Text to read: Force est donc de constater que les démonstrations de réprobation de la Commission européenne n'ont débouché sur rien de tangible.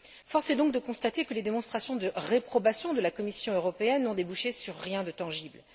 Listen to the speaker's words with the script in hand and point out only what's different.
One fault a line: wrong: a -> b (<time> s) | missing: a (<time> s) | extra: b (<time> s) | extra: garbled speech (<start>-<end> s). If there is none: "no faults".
no faults